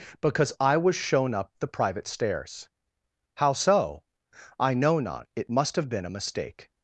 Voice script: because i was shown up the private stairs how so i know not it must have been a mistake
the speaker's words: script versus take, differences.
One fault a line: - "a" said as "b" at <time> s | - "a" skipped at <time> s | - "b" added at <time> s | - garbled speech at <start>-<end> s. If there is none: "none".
none